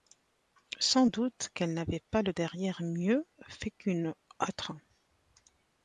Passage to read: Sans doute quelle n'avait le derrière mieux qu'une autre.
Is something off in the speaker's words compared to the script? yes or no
yes